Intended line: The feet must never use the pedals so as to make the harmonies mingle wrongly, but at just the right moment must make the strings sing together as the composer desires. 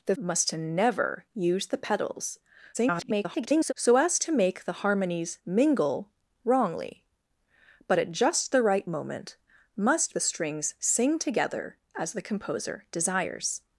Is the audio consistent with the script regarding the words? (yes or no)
no